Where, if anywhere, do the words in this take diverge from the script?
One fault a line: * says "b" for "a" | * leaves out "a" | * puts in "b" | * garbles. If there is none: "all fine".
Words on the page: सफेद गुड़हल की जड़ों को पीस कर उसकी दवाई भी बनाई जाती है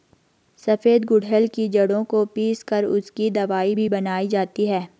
all fine